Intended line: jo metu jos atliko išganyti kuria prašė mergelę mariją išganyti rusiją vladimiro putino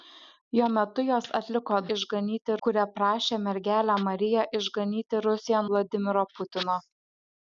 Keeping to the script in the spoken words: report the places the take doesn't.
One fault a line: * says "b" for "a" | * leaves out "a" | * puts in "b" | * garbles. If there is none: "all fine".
all fine